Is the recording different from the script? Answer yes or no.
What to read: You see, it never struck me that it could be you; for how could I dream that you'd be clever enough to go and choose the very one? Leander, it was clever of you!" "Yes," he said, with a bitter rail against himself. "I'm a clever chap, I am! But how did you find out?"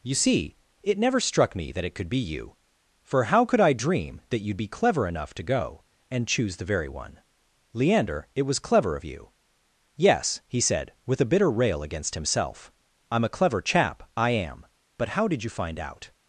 no